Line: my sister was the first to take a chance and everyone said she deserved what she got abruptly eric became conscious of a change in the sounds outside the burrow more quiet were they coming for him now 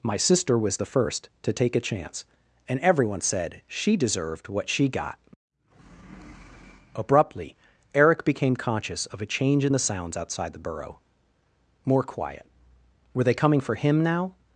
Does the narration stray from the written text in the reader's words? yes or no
no